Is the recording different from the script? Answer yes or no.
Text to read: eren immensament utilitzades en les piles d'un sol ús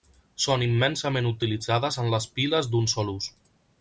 yes